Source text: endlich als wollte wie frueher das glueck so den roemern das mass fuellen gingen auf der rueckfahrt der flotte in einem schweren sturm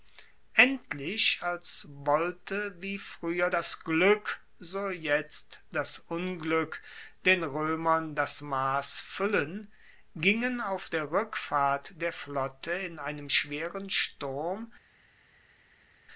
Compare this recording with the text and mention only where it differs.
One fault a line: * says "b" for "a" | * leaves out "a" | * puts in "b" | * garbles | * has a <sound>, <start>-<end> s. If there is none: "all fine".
* puts in "jetzt das unglueck"